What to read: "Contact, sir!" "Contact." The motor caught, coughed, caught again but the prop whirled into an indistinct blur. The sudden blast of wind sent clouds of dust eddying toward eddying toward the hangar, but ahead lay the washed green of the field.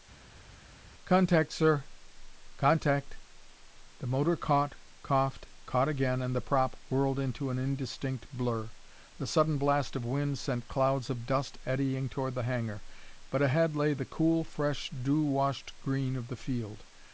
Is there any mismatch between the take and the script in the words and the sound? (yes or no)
yes